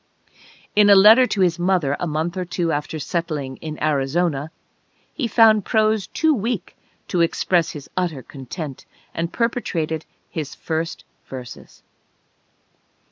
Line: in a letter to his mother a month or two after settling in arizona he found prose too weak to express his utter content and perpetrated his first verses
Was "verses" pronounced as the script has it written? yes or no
yes